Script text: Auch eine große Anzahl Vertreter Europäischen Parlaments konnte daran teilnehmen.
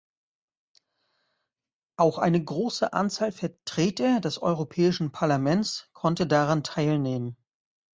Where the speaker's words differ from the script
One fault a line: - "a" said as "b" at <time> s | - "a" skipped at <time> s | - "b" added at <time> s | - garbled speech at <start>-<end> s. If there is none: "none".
- "des" added at 4.2 s